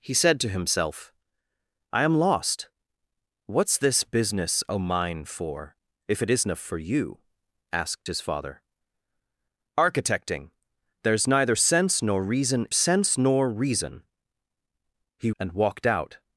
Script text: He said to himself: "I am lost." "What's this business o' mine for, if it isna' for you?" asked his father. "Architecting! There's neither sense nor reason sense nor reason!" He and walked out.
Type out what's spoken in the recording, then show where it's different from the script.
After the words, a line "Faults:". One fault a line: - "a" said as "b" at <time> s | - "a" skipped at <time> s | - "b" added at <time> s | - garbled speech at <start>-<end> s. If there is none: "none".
He said to himself: "I am lost." "What's this business o' mine for, if it isna' for you?" asked his father. "Architecting! There's neither sense nor reason sense nor reason!" He and walked out.
Faults:
none